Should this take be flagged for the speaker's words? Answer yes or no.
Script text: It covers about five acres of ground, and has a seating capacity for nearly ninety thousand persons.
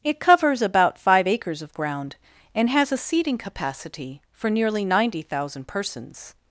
no